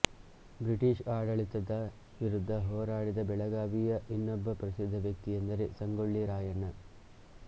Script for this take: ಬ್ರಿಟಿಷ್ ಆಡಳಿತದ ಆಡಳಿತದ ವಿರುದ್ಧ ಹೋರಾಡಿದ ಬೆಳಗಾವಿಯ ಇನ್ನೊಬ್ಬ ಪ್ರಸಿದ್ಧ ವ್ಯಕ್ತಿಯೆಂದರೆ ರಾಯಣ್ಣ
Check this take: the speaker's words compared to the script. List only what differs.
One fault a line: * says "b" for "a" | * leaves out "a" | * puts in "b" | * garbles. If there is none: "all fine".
* leaves out "ಆಡಳಿತದ"
* puts in "ಸಂಗೊಳ್ಳಿ"